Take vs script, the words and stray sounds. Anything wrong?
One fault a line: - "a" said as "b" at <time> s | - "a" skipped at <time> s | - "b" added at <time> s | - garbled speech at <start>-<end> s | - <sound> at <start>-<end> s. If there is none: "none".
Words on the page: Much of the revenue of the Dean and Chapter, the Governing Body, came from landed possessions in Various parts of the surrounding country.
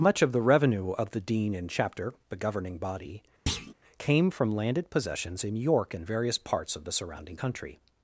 - thud at 3.5-3.7 s
- "York and" added at 5.6 s